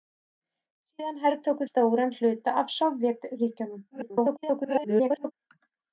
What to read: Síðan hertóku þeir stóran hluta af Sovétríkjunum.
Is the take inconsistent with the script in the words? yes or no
yes